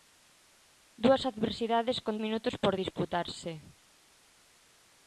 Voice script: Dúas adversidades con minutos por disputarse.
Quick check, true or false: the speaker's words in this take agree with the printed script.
true